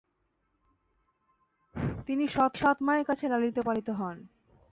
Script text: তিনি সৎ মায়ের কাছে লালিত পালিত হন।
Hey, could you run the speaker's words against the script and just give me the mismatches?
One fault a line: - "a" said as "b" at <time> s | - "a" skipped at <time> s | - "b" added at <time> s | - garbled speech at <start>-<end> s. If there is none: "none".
- "সৎ" added at 2.5 s